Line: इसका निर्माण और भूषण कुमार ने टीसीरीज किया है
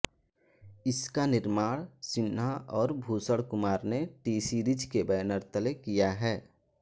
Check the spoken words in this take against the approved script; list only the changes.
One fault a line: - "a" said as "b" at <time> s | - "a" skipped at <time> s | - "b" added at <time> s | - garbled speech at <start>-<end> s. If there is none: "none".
- "सिन्हा" added at 2.1 s
- "के बैनर तले" added at 4.9 s